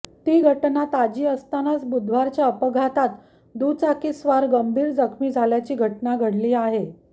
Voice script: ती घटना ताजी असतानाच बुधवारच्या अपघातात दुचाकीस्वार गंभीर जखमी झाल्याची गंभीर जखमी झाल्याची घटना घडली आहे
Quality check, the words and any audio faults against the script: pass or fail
fail